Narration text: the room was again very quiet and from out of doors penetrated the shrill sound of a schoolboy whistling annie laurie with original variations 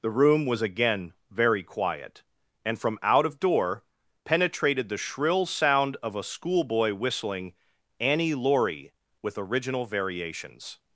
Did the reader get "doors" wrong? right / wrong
wrong